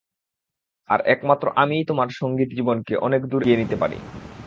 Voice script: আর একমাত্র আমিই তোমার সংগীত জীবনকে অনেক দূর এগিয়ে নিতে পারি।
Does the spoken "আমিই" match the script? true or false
true